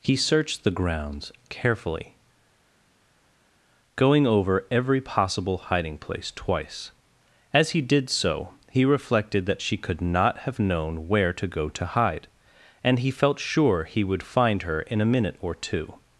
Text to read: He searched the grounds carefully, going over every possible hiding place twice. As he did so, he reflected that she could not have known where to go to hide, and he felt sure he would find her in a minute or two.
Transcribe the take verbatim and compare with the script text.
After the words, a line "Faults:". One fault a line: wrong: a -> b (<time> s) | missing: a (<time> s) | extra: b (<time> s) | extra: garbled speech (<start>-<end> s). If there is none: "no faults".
He searched the grounds carefully, going over every possible hiding place twice. As he did so, he reflected that she could not have known where to go to hide, and he felt sure he would find her in a minute or two.
Faults:
no faults